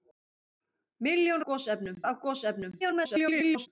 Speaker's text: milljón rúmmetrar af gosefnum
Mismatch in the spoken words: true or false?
true